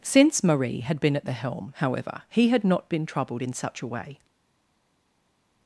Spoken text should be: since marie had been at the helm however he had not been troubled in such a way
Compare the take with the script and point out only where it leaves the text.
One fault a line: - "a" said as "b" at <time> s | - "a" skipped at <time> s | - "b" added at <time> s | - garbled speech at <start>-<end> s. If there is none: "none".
none